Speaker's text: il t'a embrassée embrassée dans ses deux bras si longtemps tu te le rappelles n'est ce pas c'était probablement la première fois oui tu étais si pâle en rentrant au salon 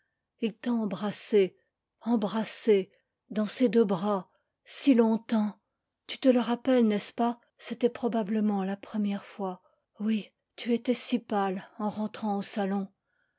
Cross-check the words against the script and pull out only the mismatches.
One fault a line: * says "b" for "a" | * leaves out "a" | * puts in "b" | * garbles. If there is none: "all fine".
all fine